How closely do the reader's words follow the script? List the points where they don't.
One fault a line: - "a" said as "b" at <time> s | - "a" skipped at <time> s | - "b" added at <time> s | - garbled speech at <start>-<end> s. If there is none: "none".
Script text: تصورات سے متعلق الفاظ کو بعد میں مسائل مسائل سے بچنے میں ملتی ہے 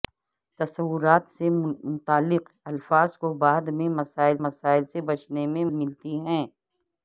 none